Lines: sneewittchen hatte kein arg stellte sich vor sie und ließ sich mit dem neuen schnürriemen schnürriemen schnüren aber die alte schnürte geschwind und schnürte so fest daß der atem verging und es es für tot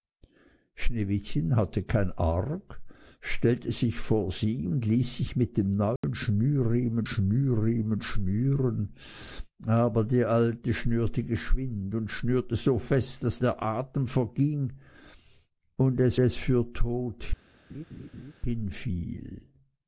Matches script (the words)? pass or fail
pass